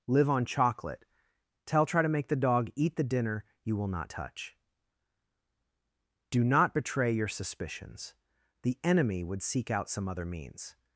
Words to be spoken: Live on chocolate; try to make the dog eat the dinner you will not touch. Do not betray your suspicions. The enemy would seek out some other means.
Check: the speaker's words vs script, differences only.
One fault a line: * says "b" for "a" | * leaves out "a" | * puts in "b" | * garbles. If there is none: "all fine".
* puts in "tell"